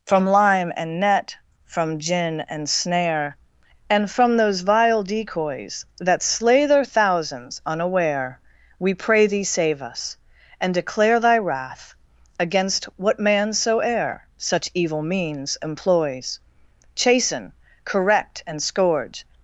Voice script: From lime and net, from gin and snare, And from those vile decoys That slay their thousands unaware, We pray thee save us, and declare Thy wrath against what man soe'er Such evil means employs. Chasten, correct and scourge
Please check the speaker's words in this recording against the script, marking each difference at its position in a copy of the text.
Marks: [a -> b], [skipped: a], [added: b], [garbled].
From lime and net, from gin and snare, And from those vile decoys That slay their thousands unaware, We pray thee save us, and declare Thy wrath against what man soe'er Such evil means employs. Chasten, correct and scourge